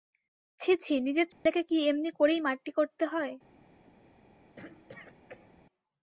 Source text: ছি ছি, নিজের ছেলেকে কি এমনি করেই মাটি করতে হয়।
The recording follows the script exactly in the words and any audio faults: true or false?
false